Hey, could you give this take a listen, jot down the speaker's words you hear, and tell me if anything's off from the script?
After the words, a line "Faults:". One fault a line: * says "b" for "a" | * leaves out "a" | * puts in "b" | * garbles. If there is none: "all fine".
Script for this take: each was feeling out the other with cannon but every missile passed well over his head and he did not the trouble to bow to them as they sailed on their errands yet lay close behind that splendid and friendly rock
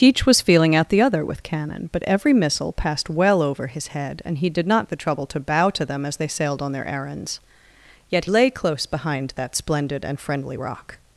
each was feeling out the other with cannon but every missile passed well over his head and he did not the trouble to bow to them as they sailed on their errands yet lay close behind that splendid and friendly rock
Faults:
all fine